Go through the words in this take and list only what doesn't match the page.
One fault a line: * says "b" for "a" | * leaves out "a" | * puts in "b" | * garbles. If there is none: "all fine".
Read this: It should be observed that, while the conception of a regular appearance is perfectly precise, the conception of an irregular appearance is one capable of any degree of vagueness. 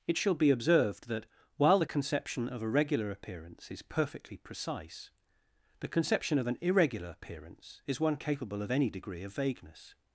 * says "shall" for "should"